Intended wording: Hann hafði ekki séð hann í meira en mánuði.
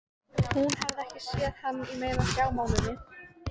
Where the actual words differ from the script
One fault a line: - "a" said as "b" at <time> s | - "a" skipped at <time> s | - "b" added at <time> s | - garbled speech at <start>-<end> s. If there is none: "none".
- "Hann" said as "Hún" at 0.6 s
- "þrjá" added at 2.3 s